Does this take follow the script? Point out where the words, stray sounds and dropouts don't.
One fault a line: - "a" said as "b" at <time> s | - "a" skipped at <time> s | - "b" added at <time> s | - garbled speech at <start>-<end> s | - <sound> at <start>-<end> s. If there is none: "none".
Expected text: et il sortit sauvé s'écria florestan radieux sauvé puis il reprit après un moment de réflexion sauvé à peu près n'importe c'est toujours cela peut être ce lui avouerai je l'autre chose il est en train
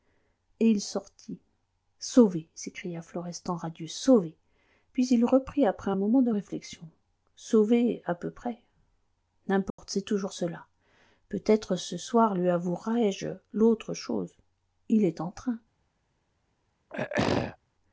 - dropout at 9.7-9.8 s
- "soir" added at 12.0 s
- throat clearing at 16.9-17.6 s